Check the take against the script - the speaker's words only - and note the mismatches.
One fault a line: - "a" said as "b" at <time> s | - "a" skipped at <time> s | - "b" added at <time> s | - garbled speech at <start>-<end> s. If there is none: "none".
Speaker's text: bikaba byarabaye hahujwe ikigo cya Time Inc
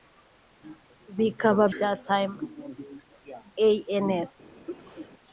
- "byarabaye hahujwe ikigo" skipped at 1.6 s